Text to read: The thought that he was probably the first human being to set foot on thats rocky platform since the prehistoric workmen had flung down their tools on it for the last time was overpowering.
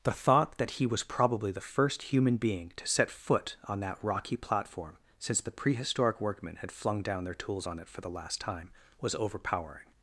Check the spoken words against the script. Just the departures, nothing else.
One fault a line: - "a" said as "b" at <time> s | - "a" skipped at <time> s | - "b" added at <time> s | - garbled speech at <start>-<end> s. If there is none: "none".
- "thats" said as "that" at 3.8 s